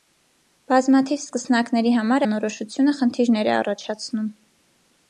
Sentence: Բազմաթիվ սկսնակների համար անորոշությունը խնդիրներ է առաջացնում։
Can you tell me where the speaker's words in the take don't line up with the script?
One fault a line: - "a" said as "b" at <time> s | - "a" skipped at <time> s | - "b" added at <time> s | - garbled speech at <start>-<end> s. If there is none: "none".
none